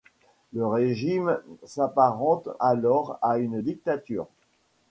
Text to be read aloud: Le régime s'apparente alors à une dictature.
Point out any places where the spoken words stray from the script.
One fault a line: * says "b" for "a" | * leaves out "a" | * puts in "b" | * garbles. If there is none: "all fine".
all fine